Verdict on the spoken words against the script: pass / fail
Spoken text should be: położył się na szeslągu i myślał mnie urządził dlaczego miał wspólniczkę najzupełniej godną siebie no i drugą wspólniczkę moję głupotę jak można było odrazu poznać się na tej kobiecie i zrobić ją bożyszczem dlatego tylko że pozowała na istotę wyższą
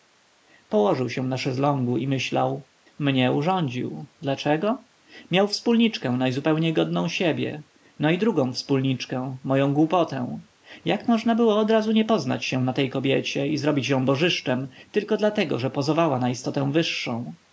fail